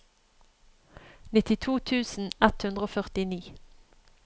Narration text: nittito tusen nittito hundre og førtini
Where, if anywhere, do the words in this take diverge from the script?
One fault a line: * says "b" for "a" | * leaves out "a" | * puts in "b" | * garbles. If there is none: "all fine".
* says "ett" for "nittito"